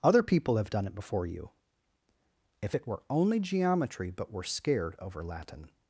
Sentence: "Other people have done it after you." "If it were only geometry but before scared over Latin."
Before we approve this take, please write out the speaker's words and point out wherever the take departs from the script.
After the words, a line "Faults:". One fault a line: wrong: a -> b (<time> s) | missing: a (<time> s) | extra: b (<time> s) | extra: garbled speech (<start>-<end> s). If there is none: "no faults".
"Other people have done it before you." "If it were only geometry but we're scared over Latin."
Faults:
wrong: after -> before (0.9 s)
wrong: before -> we're (4.3 s)